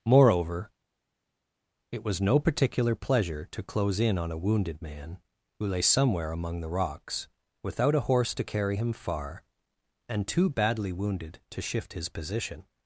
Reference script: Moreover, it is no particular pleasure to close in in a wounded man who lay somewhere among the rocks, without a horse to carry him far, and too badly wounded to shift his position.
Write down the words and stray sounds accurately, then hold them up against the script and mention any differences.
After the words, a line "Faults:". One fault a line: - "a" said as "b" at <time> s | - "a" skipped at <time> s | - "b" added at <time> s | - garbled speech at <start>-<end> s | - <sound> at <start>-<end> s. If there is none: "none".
Moreover, it was no particular pleasure to close in on a wounded man who lay somewhere among the rocks, without a horse to carry him far, and too badly wounded to shift his position.
Faults:
- "is" said as "was" at 2.0 s
- "in" said as "on" at 4.2 s